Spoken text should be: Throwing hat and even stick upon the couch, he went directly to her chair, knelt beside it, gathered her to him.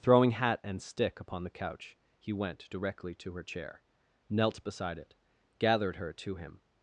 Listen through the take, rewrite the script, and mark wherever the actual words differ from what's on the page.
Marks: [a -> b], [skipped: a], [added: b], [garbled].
Throwing hat and [skipped: even] stick upon the couch, he went directly to her chair, knelt beside it, gathered her to him.